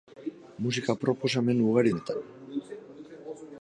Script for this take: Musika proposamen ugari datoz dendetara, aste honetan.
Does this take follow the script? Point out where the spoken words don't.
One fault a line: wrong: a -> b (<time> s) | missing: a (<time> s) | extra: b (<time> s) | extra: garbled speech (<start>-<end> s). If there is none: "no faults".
missing: datoz dendetara aste (1.9 s)